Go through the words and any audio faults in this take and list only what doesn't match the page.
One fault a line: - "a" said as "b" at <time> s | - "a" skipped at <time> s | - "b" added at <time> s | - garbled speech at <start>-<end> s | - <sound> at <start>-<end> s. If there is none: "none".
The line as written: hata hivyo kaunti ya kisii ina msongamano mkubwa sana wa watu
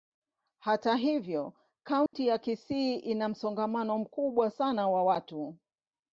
- dropout at 2.1-2.1 s